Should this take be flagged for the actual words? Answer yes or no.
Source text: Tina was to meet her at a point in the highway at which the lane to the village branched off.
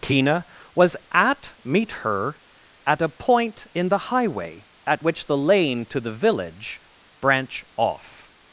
yes